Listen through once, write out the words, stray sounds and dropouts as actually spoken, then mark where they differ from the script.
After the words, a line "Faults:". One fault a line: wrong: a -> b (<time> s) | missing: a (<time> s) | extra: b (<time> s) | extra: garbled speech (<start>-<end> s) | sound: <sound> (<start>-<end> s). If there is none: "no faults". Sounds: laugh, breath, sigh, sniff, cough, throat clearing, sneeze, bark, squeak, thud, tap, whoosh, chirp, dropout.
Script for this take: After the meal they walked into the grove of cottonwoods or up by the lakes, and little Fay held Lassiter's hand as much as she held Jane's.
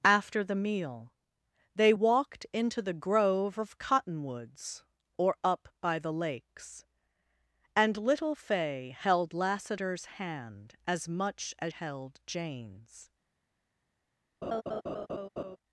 After the meal they walked into the grove of cottonwoods or up by the lakes, and little Fay held Lassiter's hand as much as held Jane's.
Faults:
missing: she (11.7 s)
sound: laugh (14.4-15.6 s)